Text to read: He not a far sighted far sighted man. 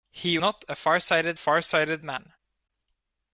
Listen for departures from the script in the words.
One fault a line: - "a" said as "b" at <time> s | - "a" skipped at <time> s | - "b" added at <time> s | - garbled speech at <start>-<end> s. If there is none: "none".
none